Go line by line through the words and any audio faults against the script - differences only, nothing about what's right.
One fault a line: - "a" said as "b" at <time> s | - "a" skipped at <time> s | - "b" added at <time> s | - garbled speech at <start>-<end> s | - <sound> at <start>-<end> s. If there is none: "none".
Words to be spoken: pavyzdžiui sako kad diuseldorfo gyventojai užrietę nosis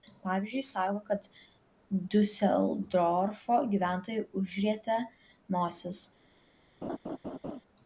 - laugh at 6.8-7.6 s